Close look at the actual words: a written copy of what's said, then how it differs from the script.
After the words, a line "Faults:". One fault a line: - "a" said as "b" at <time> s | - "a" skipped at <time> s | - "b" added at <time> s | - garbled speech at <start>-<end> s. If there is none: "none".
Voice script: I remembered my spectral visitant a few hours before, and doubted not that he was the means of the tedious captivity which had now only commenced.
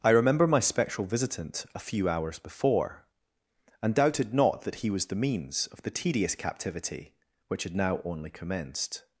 I remember my spectral visitant a few hours before, and doubted not that he was the means of the tedious captivity which had now only commenced.
Faults:
- "remembered" said as "remember" at 0.1 s